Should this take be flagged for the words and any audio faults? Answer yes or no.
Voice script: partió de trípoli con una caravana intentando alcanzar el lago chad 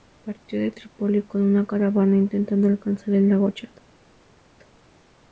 no